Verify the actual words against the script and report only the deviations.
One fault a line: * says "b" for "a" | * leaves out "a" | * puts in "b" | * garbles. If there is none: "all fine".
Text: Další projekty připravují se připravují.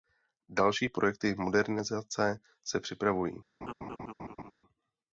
* says "modernizace" for "připravují"